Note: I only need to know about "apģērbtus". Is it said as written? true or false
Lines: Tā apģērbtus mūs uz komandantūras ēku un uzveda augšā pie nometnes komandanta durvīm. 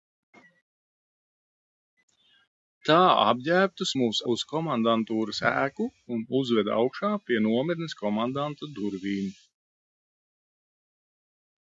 true